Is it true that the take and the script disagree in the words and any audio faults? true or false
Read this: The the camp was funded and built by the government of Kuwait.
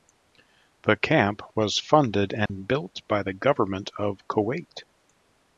true